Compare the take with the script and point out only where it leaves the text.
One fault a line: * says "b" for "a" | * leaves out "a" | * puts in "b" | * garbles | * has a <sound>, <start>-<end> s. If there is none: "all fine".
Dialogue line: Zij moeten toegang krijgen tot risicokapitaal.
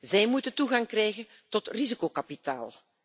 all fine